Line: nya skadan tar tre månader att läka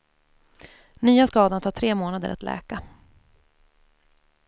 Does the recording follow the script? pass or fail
pass